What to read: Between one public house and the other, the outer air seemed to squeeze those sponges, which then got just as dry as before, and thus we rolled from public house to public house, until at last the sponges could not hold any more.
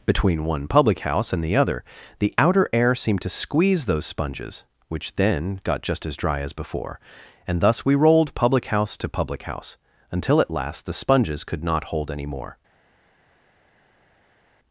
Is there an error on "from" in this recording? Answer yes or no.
yes